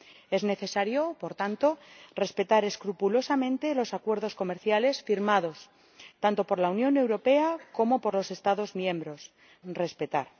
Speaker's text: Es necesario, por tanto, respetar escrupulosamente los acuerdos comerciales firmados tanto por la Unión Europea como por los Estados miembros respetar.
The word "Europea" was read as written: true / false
true